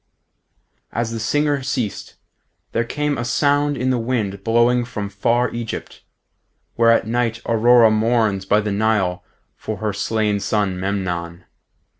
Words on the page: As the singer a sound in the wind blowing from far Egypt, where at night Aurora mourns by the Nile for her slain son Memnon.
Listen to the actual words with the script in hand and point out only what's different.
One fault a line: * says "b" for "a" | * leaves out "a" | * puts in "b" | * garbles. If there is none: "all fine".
* puts in "ceased there came"